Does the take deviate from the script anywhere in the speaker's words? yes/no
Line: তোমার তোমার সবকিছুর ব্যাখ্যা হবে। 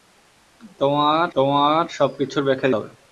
no